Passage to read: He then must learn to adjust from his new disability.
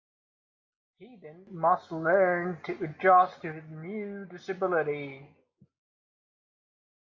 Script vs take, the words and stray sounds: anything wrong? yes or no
yes